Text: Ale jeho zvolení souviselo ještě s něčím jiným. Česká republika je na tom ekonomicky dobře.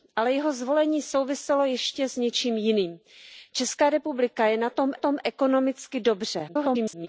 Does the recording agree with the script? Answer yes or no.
no